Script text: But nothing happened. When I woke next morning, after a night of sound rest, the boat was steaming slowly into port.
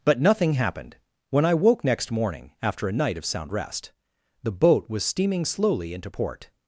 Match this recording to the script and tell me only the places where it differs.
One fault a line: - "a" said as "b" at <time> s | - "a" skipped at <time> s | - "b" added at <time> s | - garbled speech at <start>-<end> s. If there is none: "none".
none